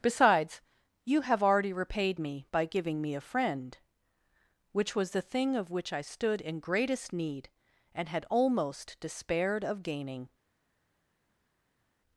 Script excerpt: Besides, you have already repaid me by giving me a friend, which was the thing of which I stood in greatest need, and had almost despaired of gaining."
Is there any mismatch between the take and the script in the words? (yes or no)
no